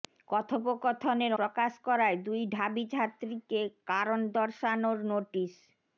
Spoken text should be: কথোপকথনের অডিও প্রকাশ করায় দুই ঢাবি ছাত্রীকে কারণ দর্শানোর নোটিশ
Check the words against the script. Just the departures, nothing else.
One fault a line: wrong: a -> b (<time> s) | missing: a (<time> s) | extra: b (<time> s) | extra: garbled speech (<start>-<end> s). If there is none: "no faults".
missing: অডিও (1.3 s)